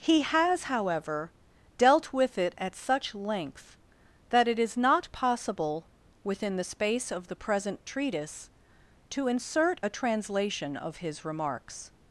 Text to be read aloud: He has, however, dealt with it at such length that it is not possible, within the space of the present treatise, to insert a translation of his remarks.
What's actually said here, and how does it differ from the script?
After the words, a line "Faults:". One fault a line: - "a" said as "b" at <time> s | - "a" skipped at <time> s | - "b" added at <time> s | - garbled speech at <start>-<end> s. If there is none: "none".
He has, however, dealt with it at such length that it is not possible, within the space of the present treatise, to insert a translation of his remarks.
Faults:
none